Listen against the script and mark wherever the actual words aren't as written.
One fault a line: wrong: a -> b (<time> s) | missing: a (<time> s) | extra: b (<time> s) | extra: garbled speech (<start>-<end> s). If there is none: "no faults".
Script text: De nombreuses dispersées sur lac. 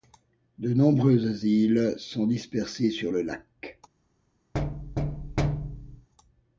extra: îles sont (1.4 s)
extra: le (3.1 s)